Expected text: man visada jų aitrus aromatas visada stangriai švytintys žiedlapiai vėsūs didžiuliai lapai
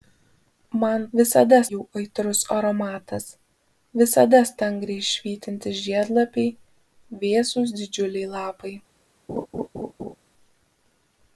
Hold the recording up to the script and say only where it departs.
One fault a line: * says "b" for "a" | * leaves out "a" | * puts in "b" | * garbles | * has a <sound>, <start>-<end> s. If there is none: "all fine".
* has a laugh, 9.3-10.2 s